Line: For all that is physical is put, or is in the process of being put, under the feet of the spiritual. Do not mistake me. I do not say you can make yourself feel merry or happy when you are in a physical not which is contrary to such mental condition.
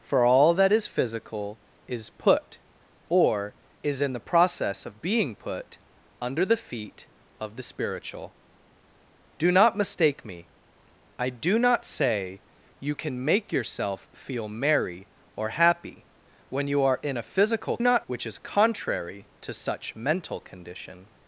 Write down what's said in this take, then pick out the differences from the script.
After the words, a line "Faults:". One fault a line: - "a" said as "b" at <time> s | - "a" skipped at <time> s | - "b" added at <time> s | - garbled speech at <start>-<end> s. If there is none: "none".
For all that is physical is put, or is in the process of being put, under the feet of the spiritual. Do not mistake me. I do not say you can make yourself feel merry or happy when you are in a physical not which is contrary to such mental condition.
Faults:
none